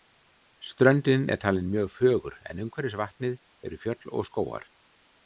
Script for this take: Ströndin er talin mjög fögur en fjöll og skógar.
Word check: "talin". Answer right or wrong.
right